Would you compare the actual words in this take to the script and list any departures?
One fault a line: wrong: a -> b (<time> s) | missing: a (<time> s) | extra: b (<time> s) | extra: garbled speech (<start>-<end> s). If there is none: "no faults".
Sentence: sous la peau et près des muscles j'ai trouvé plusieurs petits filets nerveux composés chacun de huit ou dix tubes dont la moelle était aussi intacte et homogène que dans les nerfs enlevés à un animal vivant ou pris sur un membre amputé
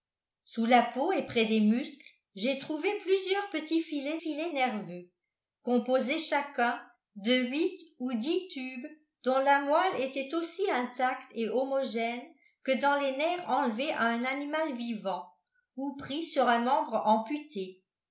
extra: filets (4.2 s)